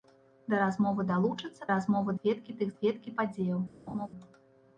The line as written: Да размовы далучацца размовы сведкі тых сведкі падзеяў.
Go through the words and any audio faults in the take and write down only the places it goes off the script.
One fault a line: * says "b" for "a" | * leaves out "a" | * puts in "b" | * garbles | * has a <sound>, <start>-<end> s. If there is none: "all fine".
* has a laugh, 3.9-4.1 s